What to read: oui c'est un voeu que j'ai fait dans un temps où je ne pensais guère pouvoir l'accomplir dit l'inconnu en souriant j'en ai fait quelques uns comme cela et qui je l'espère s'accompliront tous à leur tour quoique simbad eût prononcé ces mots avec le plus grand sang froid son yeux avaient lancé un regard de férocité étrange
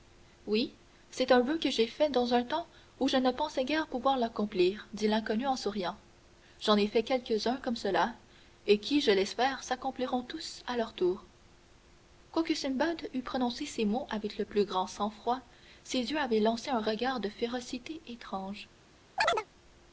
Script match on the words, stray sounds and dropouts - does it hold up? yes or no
no